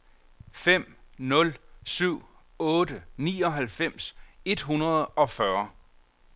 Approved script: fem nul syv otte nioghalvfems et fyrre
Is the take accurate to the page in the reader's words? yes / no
no